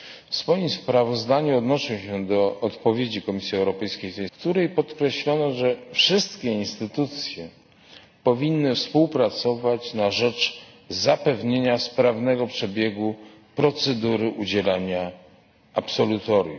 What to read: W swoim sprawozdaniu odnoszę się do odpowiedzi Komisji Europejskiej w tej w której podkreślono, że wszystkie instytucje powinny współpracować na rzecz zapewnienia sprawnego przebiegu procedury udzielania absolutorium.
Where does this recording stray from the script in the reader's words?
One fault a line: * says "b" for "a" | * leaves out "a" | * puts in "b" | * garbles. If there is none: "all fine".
all fine